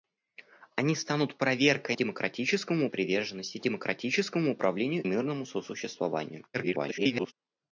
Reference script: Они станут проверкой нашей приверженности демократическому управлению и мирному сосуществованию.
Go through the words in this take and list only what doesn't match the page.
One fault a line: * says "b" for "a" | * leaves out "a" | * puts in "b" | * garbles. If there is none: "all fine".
* says "демократическому" for "нашей"
* leaves out "и"
* garbles